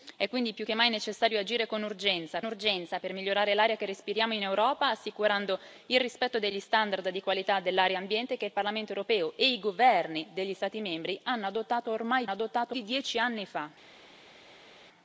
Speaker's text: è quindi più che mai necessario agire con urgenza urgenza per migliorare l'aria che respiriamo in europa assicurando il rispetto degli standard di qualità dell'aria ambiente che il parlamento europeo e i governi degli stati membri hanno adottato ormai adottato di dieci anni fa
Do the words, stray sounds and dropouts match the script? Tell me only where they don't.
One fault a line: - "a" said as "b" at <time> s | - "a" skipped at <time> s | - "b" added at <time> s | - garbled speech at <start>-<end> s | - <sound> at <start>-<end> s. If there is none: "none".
none